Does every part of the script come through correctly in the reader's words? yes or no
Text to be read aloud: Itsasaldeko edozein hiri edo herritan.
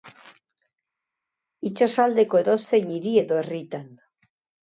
yes